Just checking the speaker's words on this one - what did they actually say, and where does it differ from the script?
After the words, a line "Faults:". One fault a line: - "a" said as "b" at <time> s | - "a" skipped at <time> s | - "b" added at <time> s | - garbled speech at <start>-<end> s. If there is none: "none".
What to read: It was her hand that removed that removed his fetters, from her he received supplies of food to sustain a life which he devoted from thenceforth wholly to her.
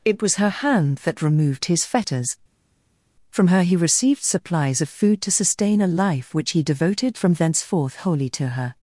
It was her hand that removed his fetters, from her he received supplies of food to sustain a life which he devoted from thenceforth wholly to her.
Faults:
- "that removed" skipped at 1.6 s